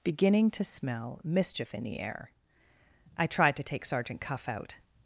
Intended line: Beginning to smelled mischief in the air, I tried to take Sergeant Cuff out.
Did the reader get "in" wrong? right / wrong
right